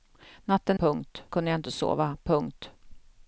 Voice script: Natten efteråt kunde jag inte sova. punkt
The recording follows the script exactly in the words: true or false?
false